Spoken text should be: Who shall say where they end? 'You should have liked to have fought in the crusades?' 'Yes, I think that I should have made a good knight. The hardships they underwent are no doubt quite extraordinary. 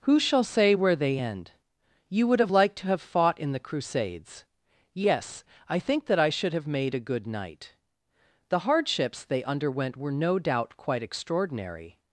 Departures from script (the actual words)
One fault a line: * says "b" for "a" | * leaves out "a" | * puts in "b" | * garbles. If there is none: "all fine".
* says "would" for "should"
* says "were" for "are"